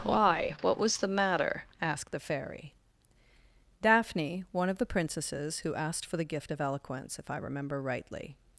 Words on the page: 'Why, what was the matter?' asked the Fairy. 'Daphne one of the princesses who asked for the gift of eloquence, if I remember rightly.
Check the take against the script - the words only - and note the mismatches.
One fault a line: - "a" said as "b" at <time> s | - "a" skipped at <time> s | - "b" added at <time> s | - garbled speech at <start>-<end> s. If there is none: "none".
none